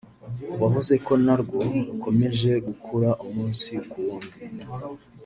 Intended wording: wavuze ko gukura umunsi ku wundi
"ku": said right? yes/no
yes